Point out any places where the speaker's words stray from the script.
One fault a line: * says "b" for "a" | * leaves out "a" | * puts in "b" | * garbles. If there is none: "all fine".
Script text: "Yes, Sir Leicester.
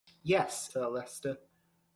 all fine